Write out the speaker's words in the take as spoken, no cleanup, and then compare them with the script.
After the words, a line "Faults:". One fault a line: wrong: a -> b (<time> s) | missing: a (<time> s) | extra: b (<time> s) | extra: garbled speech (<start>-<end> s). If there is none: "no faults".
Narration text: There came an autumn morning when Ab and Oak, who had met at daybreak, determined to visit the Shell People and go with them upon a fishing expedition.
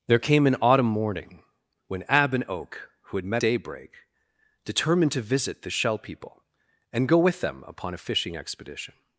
There came an autumn morning when Ab and Oak, who had met daybreak, determined to visit the Shell People and go with them upon a fishing expedition.
Faults:
missing: at (3.4 s)